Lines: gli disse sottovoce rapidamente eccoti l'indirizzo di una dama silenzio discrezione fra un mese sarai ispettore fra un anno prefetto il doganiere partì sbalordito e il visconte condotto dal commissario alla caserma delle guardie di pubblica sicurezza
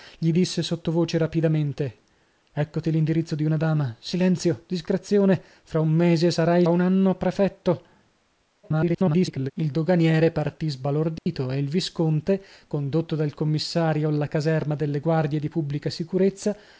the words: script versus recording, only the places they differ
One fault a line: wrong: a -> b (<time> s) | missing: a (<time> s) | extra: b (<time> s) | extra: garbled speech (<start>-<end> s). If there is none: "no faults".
missing: ispettore fra (6.6 s)
extra: garbled speech (8.6-9.5 s)